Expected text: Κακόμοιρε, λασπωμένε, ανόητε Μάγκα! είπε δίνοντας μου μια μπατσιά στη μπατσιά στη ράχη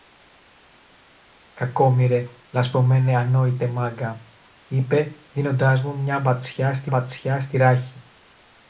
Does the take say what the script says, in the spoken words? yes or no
yes